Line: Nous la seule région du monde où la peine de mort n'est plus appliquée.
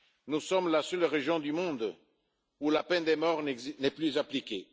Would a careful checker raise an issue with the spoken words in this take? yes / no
yes